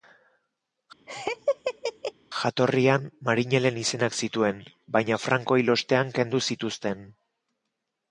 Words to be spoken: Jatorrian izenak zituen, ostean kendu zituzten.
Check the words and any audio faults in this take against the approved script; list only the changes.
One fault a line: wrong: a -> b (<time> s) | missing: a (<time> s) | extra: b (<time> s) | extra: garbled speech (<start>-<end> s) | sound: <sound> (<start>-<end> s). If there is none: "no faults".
sound: laugh (1.1-2.1 s)
extra: marinelen (3.3 s)
extra: baina Franco hil (5.0 s)